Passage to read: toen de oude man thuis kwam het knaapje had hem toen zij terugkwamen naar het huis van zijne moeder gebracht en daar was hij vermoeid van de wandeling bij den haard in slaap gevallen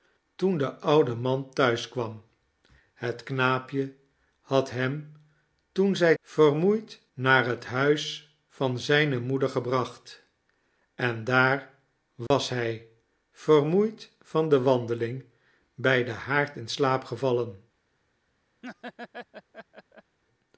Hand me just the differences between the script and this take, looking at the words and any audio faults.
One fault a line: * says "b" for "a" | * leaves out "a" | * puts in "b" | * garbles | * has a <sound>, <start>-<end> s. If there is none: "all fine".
* says "vermoeid" for "terugkwamen"
* has a dropout, 12.3-12.3 s
* has a laugh, 18.6-20.2 s